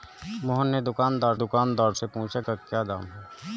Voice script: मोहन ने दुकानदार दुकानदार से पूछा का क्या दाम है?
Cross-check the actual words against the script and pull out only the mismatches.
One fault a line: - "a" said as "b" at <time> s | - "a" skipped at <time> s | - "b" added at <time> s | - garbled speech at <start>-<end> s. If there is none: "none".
none